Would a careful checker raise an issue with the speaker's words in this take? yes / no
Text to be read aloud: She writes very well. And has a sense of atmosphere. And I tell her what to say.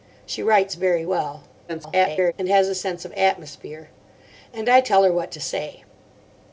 yes